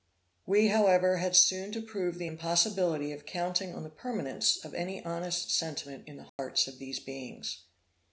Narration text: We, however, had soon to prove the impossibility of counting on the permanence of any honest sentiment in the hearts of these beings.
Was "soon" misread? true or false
false